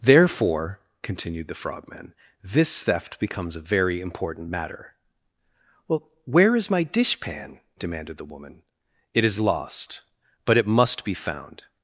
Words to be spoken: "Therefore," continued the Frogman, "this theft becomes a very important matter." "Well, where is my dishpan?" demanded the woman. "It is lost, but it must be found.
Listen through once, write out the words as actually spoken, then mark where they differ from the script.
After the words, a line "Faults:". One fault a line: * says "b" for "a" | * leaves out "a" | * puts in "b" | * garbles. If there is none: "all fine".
"Therefore," continued the Frogman, "this theft becomes a very important matter." "Well, where is my dishpan?" demanded the woman. "It is lost, but it must be found.
Faults:
all fine